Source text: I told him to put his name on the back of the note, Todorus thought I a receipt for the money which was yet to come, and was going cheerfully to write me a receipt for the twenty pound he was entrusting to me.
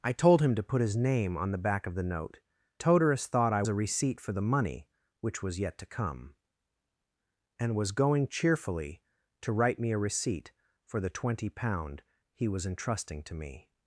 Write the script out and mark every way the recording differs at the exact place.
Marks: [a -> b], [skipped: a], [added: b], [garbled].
I told him to put his name on the back of the note, Todorus thought I a receipt for the money which was yet to come, and was going cheerfully to write me a receipt for the twenty pound he was entrusting to me.